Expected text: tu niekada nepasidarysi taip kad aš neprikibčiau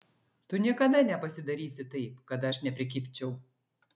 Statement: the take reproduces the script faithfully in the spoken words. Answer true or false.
true